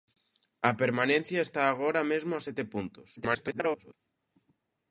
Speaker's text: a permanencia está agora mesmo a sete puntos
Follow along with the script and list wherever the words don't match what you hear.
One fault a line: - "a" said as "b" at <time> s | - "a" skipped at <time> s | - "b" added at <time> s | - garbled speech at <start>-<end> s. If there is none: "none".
- garbled speech at 3.2-3.9 s